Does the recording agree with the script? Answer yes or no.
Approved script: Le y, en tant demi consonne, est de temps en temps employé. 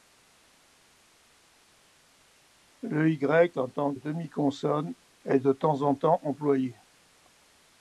yes